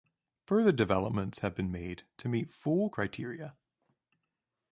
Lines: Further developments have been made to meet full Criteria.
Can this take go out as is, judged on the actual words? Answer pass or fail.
pass